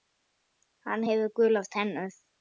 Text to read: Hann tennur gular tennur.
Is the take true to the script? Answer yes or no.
no